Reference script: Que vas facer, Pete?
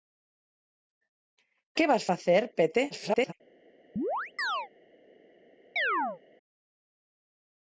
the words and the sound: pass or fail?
fail